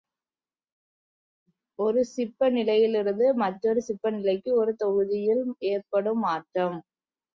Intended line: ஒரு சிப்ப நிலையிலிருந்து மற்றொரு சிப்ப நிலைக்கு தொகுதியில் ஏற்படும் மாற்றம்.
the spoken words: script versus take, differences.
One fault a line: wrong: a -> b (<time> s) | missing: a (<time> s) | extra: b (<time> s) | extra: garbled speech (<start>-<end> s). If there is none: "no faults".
extra: ஒரு (4.5 s)